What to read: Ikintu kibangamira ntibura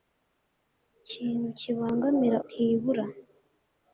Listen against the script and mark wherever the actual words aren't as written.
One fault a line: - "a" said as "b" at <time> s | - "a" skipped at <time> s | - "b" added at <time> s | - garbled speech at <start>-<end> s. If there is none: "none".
none